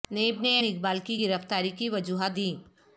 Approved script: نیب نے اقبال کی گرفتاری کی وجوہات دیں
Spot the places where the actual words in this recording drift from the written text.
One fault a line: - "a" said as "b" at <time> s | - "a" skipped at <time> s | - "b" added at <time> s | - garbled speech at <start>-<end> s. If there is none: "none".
none